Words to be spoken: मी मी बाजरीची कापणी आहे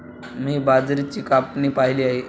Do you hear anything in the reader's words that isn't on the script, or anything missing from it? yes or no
yes